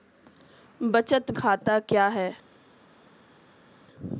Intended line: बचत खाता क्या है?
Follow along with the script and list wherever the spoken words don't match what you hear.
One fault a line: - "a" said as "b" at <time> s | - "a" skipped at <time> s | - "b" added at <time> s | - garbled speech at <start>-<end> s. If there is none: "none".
none